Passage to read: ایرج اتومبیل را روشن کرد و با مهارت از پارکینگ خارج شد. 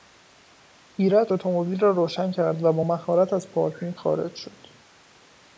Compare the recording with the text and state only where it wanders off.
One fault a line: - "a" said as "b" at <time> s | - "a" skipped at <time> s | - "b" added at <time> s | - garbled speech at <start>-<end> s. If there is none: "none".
none